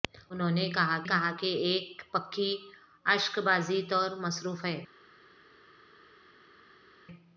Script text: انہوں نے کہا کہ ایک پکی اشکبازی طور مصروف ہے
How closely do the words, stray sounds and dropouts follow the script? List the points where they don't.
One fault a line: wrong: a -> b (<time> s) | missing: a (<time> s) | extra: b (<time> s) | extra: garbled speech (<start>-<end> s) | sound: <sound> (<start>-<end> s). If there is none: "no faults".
extra: کہا (1.0 s)